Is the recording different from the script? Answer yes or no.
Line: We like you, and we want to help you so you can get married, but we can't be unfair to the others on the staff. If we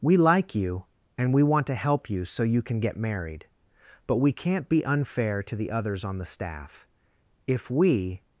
no